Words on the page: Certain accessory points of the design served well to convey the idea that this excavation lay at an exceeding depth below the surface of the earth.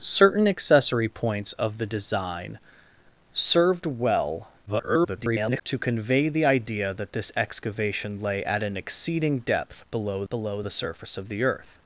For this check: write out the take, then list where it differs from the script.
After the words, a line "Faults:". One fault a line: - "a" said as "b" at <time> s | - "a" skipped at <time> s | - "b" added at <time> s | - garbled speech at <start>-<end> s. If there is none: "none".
Certain accessory points of the design served well [garbled] to convey the idea that this excavation lay at an exceeding depth below below the surface of the earth.
Faults:
- garbled speech at 4.7-5.6 s
- "below" added at 10.3 s